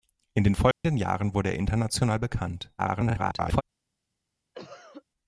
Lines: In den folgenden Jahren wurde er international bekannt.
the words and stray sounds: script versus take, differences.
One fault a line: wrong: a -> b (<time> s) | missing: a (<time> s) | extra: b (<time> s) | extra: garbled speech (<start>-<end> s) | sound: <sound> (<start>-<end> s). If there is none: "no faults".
sound: dropout (0.7-0.8 s)
extra: garbled speech (2.8-3.6 s)
sound: cough (4.5-5.0 s)